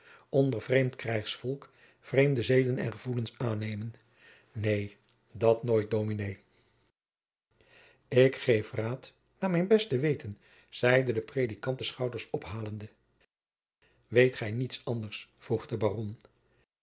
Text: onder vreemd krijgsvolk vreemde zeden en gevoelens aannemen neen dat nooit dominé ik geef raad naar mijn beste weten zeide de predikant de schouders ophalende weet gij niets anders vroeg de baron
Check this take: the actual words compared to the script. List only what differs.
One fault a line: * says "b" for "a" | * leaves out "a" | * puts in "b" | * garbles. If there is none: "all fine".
all fine